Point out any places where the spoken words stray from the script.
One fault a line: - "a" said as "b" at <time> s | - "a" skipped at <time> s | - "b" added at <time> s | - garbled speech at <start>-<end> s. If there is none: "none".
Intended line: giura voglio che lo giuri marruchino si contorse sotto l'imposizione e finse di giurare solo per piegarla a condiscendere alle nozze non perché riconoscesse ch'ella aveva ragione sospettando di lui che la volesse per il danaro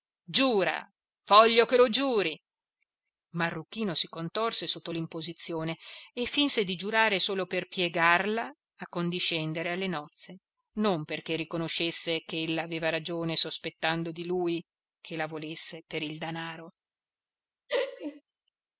none